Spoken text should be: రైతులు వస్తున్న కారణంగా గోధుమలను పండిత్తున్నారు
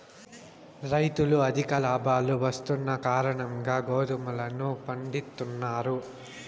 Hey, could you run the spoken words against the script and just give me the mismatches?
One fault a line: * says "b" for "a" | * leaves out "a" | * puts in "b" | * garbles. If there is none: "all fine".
* puts in "అధిక లాభాలు"